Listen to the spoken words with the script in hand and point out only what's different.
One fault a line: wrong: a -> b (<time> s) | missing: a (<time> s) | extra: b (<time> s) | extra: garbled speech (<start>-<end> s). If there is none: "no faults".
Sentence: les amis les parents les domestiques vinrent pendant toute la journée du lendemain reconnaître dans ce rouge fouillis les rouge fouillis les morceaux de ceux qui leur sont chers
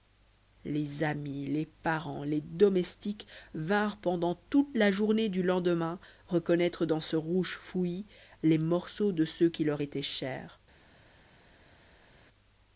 missing: rouge fouillis les (8.6 s)
wrong: sont -> étaient (9.8 s)